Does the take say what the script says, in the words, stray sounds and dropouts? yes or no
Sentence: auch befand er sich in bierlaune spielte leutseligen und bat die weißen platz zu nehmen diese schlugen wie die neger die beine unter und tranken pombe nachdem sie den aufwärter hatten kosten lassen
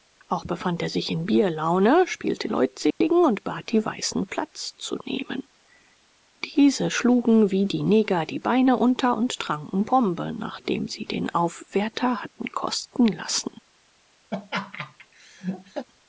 no